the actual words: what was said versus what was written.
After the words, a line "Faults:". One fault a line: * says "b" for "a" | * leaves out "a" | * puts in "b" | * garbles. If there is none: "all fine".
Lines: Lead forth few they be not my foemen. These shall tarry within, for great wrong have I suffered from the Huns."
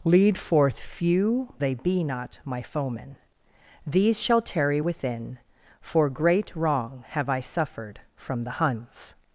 Lead forth few they be not my foemen. These shall tarry within, for great wrong have I suffered from the Huns."
Faults:
all fine